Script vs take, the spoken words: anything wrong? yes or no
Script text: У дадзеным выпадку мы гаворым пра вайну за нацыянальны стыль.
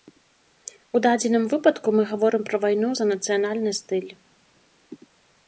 no